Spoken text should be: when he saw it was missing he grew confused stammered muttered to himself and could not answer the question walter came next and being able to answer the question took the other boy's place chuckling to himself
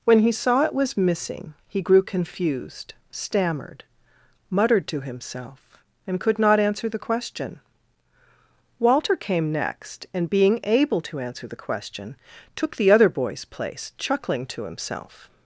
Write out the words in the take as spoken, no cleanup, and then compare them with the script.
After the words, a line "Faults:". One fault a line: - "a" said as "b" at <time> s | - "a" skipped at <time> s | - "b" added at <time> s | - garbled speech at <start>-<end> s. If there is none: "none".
when he saw it was missing he grew confused stammered muttered to himself and could not answer the question walter came next and being able to answer the question took the other boy's place chuckling to himself
Faults:
none